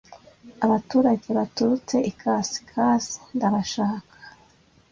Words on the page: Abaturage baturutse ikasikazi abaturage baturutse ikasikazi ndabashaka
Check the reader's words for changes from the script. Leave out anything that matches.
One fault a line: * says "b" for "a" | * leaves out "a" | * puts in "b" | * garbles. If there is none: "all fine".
* leaves out "abaturage baturutse ikasikazi"